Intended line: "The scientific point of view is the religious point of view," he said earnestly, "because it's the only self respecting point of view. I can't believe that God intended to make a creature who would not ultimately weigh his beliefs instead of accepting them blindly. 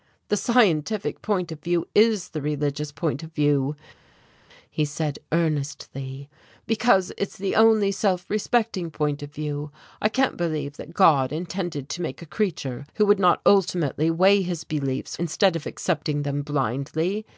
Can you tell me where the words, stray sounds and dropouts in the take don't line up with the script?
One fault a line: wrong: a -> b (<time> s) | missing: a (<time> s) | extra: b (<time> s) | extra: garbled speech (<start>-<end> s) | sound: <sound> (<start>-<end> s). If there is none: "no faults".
no faults